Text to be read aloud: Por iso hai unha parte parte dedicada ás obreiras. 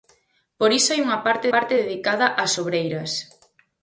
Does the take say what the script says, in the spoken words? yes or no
yes